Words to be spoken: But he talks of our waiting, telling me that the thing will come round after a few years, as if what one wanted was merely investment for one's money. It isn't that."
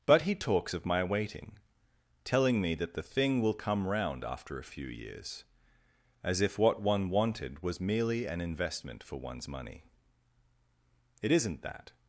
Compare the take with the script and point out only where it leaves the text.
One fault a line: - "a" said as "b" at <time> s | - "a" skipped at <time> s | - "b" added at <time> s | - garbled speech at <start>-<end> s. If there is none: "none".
- "our" said as "my" at 0.8 s
- "an" added at 8.2 s